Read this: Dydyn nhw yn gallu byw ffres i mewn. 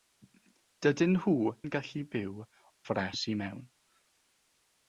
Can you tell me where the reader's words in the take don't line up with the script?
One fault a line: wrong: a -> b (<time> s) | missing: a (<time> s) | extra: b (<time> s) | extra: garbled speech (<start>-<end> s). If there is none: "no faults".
no faults